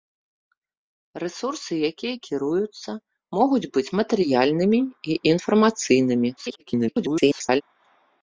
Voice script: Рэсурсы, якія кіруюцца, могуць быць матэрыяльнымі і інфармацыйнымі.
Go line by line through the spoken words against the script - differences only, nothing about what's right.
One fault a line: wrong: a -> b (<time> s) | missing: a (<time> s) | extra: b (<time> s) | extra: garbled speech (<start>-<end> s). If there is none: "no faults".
extra: garbled speech (6.4-7.6 s)